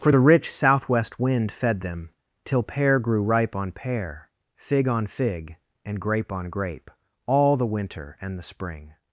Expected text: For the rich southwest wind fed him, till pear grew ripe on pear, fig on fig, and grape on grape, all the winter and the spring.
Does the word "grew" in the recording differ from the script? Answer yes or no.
no